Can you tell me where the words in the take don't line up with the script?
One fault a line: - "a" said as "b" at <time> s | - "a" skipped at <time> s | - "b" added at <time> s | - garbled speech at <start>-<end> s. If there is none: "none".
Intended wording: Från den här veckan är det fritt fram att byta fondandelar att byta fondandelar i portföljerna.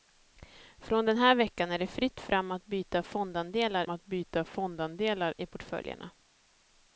none